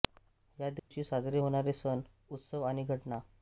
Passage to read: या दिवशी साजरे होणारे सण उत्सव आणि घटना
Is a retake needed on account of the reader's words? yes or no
no